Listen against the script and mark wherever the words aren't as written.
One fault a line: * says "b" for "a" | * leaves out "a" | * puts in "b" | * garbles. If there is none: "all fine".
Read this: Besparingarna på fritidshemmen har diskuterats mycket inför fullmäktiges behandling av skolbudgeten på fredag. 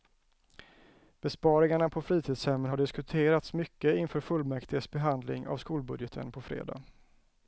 all fine